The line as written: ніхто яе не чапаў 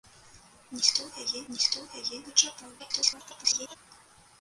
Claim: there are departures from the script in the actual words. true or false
true